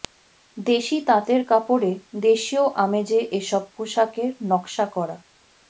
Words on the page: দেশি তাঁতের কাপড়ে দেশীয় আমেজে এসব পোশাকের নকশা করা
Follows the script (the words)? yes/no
yes